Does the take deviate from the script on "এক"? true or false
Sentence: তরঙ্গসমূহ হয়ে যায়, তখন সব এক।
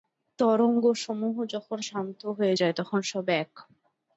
false